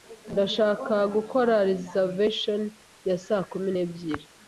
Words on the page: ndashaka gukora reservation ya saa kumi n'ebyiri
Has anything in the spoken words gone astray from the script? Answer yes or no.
no